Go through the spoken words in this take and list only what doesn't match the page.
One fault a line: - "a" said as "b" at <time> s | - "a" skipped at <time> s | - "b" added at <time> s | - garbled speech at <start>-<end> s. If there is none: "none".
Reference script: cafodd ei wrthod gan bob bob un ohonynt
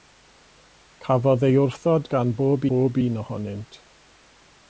none